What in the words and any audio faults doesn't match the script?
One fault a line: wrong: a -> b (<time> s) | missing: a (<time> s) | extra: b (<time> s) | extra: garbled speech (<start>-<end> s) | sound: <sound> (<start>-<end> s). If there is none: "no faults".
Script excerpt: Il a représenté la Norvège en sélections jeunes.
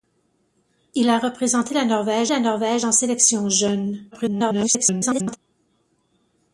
extra: la Norvège (2.3 s)
extra: garbled speech (4.1-5.4 s)